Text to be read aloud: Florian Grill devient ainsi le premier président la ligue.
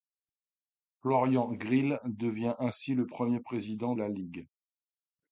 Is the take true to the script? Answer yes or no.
yes